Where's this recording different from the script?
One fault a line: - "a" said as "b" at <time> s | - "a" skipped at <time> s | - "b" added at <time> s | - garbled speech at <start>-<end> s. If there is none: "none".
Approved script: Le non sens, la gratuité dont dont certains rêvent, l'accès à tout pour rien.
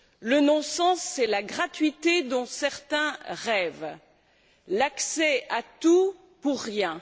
- "c'est" added at 1.0 s
- "dont" skipped at 2.5 s